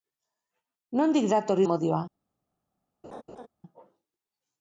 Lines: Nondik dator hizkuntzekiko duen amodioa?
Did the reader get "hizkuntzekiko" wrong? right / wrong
wrong